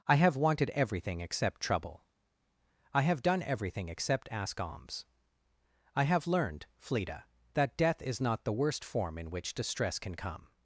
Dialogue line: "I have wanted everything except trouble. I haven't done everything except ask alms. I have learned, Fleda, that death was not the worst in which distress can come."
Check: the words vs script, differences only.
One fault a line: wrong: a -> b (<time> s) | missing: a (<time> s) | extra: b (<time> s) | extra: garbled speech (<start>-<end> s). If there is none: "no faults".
wrong: haven't -> have (3.0 s)
wrong: was -> is (8.0 s)
extra: form (8.8 s)